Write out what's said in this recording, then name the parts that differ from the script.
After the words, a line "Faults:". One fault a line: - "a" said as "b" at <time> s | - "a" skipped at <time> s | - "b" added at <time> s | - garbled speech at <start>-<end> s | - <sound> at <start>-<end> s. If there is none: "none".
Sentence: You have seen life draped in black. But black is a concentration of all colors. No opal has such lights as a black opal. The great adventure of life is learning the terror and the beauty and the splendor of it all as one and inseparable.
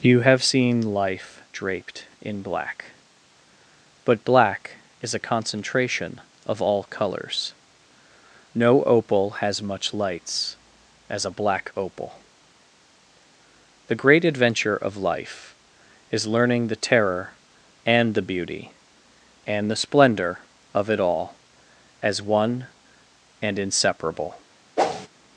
You have seen life draped in black. But black is a concentration of all colors. No opal has much lights as a black opal. The great adventure of life is learning the terror and the beauty and the splendor of it all as one and inseparable.
Faults:
- "such" said as "much" at 9.6 s
- whoosh at 24.8-25.1 s